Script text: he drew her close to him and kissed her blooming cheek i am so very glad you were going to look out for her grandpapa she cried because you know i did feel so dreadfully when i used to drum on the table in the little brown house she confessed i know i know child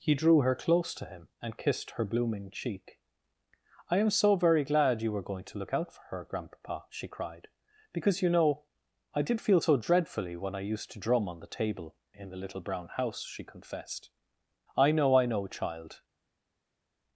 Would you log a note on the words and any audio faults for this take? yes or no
no